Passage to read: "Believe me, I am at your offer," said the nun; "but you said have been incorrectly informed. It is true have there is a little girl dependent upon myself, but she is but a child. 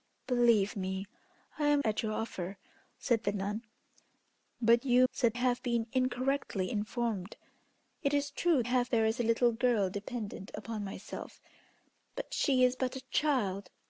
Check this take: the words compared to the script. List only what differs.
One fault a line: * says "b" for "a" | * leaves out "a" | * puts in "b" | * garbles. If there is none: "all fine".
all fine